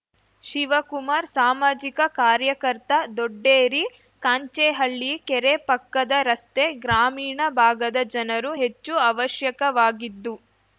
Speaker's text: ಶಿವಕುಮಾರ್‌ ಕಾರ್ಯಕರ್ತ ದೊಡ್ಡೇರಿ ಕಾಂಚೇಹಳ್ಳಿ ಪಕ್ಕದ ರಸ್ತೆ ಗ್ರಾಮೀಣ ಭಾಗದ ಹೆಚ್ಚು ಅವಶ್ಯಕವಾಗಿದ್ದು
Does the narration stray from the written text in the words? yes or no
yes